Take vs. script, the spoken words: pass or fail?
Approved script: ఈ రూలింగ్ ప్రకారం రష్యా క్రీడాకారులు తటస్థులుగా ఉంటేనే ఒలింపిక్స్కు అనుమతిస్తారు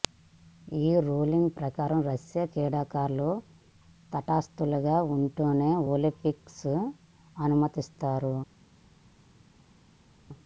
pass